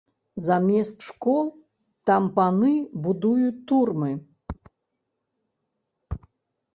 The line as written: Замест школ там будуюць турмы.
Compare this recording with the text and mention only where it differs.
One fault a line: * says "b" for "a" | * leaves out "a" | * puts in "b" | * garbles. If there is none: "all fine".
* puts in "паны"